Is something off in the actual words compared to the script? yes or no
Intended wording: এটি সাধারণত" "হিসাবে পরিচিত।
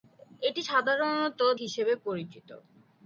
no